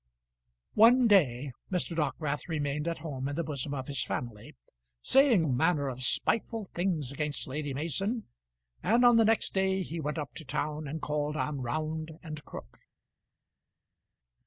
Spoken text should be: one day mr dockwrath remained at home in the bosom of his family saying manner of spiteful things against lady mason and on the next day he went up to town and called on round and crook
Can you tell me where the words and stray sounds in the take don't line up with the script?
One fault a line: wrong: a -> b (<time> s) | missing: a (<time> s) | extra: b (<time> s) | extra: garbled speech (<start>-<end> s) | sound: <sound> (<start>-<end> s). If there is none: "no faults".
no faults